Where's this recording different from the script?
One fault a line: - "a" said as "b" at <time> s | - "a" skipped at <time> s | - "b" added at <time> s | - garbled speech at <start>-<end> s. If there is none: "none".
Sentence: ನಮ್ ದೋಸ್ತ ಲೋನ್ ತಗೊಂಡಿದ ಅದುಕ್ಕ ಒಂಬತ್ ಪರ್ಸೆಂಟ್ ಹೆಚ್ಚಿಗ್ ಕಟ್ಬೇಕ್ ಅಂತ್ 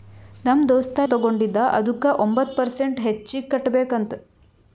- "ಲೋನ್" skipped at 1.0 s